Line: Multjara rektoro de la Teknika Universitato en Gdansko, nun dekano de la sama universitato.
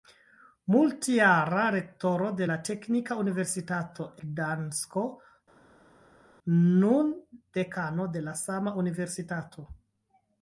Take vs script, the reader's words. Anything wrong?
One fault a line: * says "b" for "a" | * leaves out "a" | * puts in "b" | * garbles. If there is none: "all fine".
* leaves out "en"